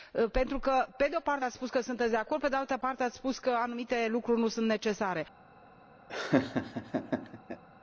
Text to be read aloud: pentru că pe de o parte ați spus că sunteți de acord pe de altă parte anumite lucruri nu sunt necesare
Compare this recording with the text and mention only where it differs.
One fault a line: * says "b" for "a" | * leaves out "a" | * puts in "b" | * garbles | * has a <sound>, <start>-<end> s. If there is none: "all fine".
* puts in "ați spus că"
* has a laugh, 6.1-7.6 s